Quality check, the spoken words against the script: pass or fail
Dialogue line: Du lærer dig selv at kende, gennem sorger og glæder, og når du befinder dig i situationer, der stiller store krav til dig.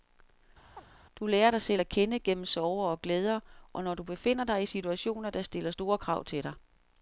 pass